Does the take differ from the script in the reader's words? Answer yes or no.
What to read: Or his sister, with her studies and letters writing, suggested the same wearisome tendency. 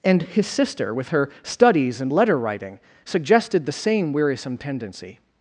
yes